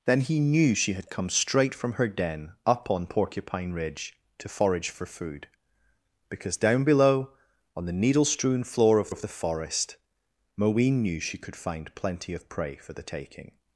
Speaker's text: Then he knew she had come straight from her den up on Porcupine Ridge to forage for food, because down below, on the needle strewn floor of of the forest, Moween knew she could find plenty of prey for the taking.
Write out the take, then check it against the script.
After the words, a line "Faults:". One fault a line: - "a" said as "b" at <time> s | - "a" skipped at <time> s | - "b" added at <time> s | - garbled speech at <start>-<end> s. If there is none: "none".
Then he knew she had come straight from her den up on Porcupine Ridge to forage for food, because down below, on the needle strewn floor of of the forest, Moween knew she could find plenty of prey for the taking.
Faults:
none